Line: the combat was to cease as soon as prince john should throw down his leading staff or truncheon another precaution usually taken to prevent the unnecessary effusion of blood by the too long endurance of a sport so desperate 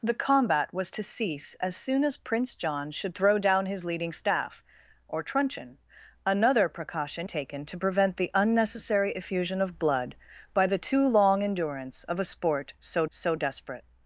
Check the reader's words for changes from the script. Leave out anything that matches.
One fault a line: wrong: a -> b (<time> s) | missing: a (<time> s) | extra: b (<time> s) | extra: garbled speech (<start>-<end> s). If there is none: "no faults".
missing: usually (7.3 s)
extra: so (13.1 s)